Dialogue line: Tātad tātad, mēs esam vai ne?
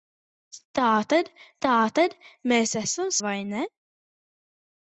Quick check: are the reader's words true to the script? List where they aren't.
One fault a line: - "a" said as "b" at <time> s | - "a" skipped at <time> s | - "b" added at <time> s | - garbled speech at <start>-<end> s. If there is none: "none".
none